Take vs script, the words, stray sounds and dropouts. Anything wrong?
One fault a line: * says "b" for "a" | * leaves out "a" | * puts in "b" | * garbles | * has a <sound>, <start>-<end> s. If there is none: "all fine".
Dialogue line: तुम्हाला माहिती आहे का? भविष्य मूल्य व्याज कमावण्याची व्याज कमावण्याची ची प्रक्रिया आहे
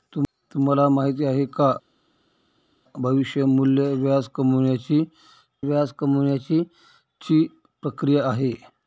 all fine